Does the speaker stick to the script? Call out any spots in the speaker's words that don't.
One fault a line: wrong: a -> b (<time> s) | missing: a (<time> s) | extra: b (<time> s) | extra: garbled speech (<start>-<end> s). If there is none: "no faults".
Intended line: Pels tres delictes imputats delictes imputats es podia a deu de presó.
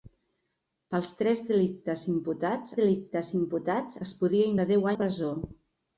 no faults